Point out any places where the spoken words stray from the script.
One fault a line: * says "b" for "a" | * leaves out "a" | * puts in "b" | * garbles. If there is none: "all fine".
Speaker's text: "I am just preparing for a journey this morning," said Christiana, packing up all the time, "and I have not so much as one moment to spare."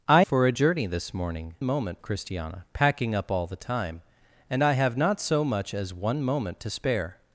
* leaves out "am just preparing"
* says "moment" for "said"